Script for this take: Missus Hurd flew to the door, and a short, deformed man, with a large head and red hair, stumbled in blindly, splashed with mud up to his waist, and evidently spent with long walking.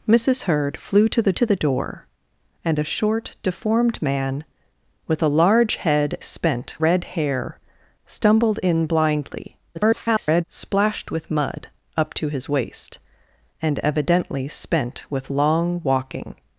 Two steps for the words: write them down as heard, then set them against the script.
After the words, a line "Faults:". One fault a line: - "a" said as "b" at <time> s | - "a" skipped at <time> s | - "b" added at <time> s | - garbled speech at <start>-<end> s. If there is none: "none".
Missus Hurd flew to the to the door, and a short, deformed man, with a large head spent red hair, stumbled in blindly, [garbled] splashed with mud up to his waist, and evidently spent with long walking.
Faults:
- "to the" added at 1.3 s
- "and" said as "spent" at 6.2 s
- garbled speech at 9.7-10.4 s